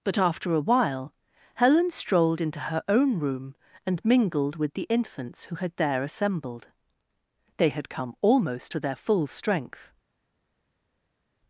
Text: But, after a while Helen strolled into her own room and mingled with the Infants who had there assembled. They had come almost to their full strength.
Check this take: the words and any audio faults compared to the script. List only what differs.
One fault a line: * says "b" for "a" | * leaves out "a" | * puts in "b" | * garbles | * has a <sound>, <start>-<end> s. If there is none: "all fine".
all fine